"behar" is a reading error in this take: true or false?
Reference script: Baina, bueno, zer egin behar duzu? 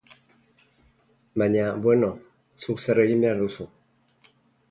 false